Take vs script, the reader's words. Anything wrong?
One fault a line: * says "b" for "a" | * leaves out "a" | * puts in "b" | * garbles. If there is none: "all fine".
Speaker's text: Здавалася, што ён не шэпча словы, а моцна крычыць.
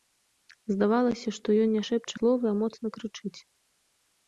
all fine